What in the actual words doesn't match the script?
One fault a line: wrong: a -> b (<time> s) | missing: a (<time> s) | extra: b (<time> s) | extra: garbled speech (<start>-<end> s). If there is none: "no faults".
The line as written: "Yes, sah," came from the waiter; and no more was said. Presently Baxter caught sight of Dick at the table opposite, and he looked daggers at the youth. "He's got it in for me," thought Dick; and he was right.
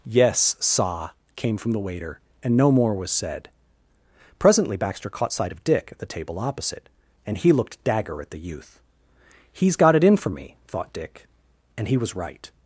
wrong: daggers -> dagger (7.8 s)